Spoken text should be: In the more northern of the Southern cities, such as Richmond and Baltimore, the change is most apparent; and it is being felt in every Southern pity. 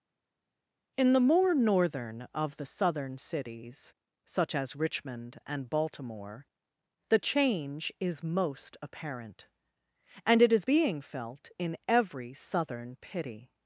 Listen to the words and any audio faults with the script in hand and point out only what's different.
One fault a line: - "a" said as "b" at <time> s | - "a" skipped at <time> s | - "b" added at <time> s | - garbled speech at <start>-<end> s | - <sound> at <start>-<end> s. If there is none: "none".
none